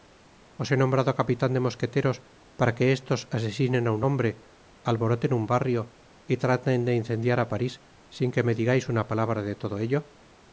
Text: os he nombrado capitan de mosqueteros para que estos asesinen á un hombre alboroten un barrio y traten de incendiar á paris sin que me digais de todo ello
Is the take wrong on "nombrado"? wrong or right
right